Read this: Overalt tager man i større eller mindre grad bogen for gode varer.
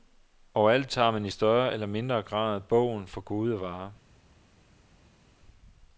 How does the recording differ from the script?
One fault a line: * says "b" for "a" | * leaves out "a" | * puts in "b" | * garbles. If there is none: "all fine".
all fine